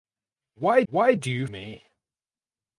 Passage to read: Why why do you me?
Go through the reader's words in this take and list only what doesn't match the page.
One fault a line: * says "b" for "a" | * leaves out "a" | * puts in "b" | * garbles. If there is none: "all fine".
all fine